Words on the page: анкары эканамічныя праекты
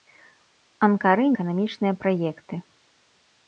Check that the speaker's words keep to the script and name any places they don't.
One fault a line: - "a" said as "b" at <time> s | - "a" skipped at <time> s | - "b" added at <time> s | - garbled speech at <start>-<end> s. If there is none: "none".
none